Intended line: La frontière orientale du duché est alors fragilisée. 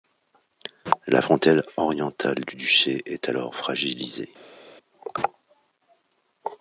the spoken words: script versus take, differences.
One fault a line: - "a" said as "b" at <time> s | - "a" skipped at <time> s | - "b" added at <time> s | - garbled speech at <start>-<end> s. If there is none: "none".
none